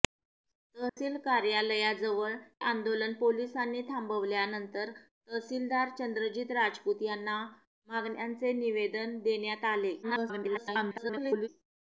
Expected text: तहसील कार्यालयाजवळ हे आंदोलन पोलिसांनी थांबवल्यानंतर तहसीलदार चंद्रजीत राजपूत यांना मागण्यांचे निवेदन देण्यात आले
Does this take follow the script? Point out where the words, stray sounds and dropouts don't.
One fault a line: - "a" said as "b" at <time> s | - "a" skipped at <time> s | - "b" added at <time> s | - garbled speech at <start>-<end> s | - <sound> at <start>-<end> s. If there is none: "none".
- dropout at 0.9-1.0 s
- "हे" skipped at 2.3 s
- garbled speech at 10.0-11.5 s